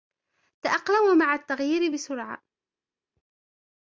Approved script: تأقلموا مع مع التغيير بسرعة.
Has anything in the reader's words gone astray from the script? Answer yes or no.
yes